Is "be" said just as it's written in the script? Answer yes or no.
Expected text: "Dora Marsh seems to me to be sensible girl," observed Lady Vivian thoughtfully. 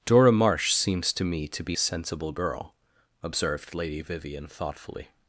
yes